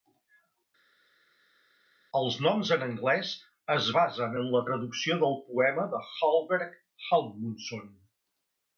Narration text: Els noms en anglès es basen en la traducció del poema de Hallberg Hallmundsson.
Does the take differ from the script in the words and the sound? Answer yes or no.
no